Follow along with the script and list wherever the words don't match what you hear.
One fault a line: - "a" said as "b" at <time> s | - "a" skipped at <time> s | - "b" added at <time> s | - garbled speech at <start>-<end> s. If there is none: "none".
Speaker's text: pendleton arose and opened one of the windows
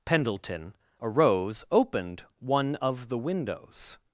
- "and" skipped at 1.6 s